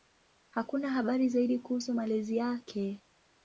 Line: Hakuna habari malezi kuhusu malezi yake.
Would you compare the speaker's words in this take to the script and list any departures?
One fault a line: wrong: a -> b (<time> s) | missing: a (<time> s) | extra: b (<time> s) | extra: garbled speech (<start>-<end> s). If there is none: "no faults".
wrong: malezi -> zaidi (1.3 s)